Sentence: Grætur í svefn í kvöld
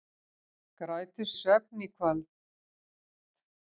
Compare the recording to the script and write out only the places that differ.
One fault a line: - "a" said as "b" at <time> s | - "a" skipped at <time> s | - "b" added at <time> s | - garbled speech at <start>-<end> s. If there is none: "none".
none